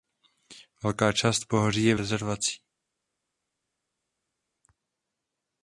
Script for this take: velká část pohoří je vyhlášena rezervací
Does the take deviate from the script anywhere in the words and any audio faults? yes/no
yes